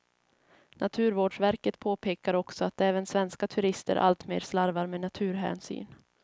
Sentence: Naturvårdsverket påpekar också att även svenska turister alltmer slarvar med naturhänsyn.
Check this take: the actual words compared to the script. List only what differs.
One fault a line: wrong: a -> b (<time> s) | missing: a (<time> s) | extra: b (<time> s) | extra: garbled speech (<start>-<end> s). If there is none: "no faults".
no faults